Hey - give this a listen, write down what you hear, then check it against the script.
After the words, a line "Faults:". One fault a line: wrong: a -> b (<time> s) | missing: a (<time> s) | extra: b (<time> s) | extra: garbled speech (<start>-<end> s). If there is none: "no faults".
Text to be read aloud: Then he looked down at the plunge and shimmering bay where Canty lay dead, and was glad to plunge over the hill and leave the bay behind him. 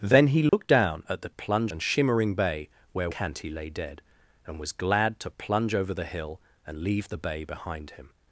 Then he looked down at the plunge and shimmering bay where Canty lay dead, and was glad to plunge over the hill and leave the bay behind him.
Faults:
no faults